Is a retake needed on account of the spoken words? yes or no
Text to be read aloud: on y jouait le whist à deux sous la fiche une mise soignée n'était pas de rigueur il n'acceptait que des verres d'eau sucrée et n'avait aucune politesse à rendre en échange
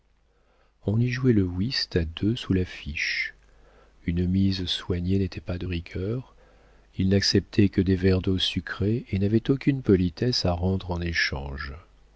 no